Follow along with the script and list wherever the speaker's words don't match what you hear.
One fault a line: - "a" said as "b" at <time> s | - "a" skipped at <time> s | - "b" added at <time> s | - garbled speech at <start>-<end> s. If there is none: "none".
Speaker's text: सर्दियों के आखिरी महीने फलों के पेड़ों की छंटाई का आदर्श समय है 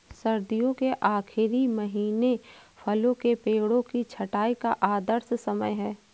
none